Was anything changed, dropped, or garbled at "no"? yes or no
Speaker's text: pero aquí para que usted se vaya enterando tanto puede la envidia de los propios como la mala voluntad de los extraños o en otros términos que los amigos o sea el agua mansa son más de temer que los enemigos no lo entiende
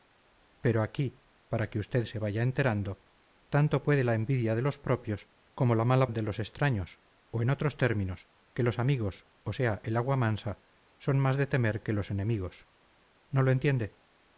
no